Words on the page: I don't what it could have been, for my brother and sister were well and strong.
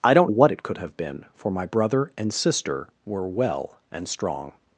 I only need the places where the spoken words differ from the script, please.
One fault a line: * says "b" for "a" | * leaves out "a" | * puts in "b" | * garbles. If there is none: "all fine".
all fine